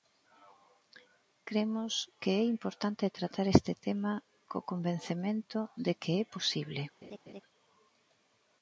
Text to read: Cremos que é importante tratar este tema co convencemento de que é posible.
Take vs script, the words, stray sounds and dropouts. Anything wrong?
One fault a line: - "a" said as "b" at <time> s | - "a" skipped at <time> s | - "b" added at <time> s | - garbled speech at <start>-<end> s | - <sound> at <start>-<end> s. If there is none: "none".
- laugh at 7.0-7.4 s